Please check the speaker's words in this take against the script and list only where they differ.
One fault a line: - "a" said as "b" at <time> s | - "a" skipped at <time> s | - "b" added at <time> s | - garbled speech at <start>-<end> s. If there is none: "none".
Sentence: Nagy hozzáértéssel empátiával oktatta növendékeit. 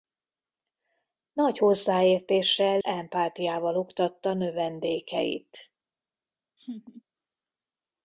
none